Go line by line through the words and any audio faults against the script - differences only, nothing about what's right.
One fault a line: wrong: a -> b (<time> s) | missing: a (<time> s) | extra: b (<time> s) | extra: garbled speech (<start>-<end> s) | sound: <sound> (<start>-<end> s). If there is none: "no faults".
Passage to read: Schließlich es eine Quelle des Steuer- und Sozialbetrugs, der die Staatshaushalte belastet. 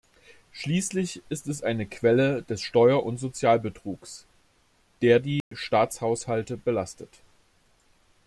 extra: ist (1.3 s)
sound: dropout (5.4-5.5 s)